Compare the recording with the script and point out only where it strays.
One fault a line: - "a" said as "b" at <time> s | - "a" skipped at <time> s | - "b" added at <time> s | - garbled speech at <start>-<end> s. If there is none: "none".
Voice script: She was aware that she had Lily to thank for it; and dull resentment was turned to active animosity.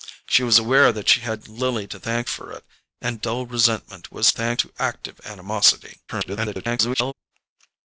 - "turned" said as "thank" at 4.3 s
- garbled speech at 6.1-7.1 s